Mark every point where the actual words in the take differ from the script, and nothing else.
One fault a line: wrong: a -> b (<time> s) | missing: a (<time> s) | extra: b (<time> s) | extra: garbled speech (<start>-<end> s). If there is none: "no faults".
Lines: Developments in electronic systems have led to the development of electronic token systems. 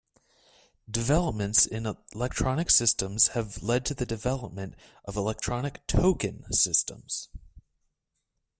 no faults